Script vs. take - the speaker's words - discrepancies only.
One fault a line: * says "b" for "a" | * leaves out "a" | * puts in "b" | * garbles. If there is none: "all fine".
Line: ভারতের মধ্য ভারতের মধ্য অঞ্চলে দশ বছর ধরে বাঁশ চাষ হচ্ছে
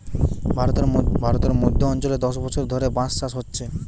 all fine